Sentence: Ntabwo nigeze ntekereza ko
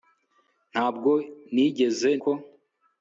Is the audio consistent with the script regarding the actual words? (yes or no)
no